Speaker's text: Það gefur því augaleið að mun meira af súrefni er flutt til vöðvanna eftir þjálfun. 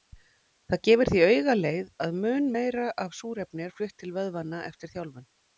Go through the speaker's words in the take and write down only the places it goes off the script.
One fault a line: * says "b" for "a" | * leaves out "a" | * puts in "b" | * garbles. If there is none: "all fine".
all fine